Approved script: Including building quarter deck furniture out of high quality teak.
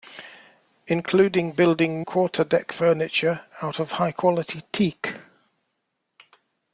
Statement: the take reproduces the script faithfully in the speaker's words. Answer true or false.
true